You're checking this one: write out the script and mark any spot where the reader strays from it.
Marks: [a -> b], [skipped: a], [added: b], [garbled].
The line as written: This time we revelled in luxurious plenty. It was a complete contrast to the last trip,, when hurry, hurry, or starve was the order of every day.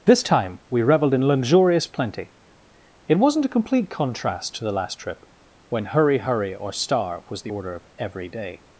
This time we revelled in luxurious plenty. It [was -> wasn't] a complete contrast to the last trip,, when hurry, hurry, or starve was the order of every day.